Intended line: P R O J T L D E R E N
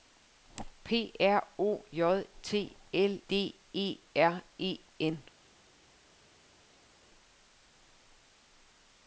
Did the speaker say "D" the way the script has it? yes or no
yes